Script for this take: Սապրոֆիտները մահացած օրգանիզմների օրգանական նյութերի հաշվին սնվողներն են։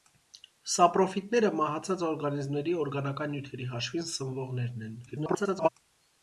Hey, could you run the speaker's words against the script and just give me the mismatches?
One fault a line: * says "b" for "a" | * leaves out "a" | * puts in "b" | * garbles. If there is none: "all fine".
* garbles